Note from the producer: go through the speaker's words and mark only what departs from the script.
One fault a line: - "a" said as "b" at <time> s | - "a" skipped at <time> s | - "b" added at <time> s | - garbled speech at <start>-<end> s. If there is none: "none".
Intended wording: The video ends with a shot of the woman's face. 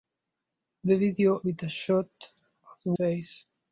- "ends" skipped at 1.4 s
- "woman's" skipped at 2.9 s